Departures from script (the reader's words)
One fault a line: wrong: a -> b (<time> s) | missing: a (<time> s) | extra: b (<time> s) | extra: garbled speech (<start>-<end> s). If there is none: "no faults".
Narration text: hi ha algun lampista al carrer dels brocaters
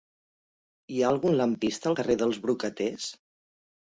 no faults